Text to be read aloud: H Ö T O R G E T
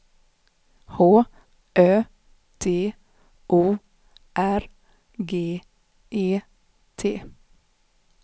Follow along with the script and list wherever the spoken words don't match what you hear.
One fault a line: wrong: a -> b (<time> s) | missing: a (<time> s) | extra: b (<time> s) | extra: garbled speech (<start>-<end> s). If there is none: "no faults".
no faults